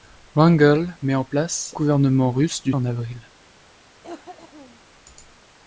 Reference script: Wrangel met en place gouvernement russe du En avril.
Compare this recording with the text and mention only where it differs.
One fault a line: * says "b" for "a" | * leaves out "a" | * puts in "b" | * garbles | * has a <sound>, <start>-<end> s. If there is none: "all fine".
* has a cough, 4.0-4.8 s